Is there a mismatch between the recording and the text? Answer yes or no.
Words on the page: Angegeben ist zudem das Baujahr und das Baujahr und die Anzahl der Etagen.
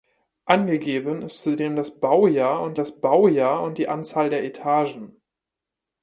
no